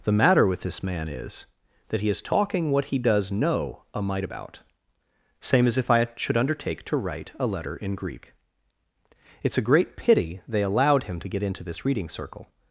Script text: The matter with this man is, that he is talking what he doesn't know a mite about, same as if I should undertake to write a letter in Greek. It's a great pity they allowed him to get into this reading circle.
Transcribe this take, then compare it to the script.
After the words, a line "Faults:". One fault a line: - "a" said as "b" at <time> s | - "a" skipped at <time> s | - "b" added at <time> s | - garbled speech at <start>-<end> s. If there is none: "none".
The matter with this man is, that he is talking what he does know a mite about, same as if I should undertake to write a letter in Greek. It's a great pity they allowed him to get into this reading circle.
Faults:
- "doesn't" said as "does" at 3.0 s